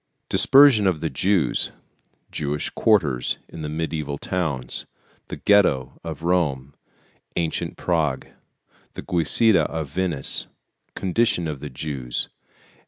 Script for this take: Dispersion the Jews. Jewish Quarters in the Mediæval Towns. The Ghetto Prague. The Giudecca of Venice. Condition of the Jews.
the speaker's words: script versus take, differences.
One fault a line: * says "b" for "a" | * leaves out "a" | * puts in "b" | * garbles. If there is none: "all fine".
* puts in "of"
* puts in "of Rome Ancient"